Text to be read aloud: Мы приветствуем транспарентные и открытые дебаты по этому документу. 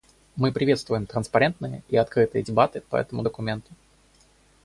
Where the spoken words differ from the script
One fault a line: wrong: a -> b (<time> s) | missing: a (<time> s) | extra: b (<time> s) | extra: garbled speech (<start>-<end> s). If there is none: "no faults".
no faults